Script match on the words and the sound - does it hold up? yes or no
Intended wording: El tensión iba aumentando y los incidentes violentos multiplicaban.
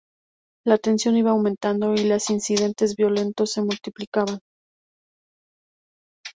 no